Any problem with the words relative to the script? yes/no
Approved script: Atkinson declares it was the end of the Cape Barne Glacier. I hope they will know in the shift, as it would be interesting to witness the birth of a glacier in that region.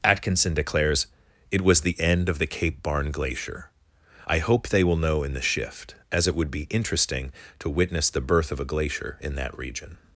no